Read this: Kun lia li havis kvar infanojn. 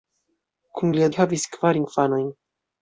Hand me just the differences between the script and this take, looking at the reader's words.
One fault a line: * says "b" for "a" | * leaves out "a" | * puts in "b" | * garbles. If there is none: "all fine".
all fine